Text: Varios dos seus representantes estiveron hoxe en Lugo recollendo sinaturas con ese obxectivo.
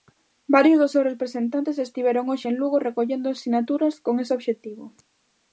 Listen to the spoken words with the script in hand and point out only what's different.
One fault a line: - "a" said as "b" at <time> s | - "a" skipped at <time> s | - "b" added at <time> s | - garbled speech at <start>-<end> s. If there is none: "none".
none